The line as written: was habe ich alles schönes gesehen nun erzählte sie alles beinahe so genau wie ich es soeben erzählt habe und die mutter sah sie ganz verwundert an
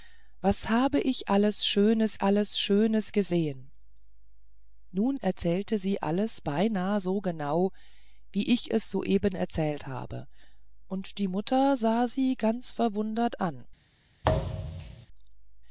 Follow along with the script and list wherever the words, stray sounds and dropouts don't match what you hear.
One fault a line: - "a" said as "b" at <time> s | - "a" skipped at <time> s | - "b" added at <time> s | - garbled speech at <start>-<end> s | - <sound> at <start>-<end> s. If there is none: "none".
- "alles schönes" added at 2.2 s
- thud at 14.2-15.1 s